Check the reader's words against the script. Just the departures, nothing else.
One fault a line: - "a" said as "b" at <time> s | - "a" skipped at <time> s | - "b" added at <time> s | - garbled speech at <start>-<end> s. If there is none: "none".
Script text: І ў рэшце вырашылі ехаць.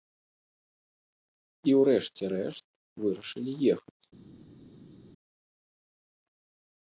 - "рэшт" added at 2.4 s